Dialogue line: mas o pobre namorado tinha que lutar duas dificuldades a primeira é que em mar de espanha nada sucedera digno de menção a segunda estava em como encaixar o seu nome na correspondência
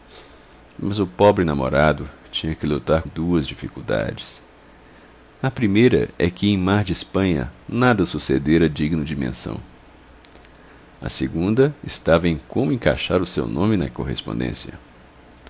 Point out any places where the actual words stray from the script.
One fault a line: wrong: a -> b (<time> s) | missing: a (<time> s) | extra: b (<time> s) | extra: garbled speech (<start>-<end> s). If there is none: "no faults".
no faults